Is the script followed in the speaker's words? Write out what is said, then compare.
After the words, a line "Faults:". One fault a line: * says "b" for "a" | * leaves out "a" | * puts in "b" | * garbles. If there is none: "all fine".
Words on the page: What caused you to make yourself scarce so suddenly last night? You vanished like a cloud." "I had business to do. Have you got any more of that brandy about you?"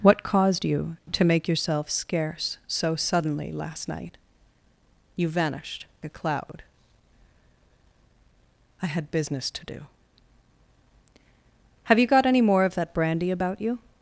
What caused you to make yourself scarce so suddenly last night? You vanished a cloud." "I had business to do. Have you got any more of that brandy about you?"
Faults:
* leaves out "like"